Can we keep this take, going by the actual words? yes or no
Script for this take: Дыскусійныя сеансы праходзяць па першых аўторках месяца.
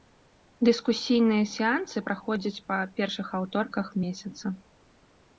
yes